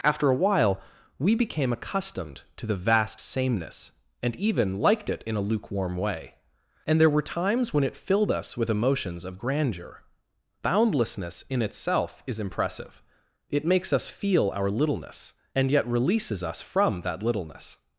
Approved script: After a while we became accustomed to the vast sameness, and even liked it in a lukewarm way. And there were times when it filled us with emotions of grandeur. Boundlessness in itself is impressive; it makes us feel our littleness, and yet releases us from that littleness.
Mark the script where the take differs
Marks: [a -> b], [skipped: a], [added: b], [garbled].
After a while we became accustomed to the vast sameness, and even liked it in a lukewarm way. And there were times when it filled us with emotions of grandeur. Boundlessness in itself is impressive; it makes us feel our littleness, and yet releases us from that littleness.